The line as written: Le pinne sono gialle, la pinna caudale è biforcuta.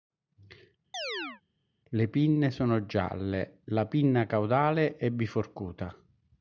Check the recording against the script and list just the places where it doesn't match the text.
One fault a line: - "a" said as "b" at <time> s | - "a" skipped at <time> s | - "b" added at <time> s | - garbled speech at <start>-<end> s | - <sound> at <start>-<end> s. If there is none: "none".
- chirp at 0.9-1.4 s